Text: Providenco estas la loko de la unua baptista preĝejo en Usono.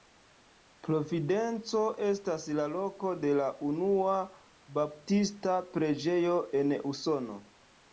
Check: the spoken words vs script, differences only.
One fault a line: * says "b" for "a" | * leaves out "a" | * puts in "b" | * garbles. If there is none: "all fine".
all fine